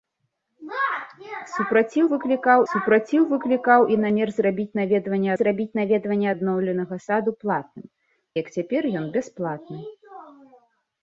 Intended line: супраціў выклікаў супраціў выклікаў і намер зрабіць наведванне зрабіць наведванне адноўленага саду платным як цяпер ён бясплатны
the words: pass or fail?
pass